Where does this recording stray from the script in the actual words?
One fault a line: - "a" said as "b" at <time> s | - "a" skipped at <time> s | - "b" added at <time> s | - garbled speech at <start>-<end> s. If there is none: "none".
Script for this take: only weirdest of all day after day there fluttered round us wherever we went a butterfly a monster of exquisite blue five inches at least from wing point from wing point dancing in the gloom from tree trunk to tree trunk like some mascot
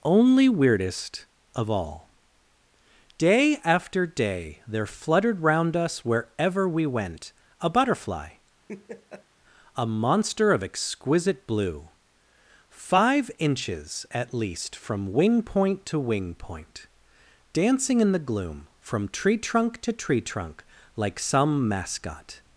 - "from" said as "to" at 15.9 s